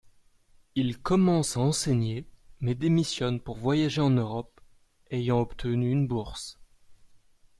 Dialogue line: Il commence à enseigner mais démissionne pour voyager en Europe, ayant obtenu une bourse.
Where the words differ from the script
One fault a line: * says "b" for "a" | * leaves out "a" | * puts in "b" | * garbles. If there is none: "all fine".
all fine